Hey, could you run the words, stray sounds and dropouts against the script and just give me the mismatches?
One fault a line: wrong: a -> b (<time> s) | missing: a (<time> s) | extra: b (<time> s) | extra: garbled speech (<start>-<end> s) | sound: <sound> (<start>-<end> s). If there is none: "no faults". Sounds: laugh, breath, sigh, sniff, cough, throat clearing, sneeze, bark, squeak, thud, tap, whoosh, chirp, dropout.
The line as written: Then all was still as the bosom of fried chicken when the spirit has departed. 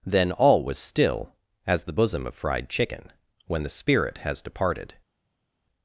no faults